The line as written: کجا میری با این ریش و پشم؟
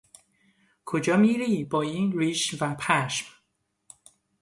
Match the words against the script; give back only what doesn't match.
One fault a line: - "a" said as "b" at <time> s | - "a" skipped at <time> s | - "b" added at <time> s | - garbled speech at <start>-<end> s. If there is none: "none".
none